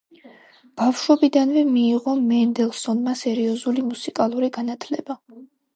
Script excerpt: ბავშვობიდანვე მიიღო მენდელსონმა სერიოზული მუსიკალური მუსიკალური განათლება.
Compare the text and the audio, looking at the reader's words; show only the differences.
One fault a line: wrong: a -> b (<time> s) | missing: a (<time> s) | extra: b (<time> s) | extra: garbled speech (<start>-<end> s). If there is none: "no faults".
missing: მუსიკალური (4.6 s)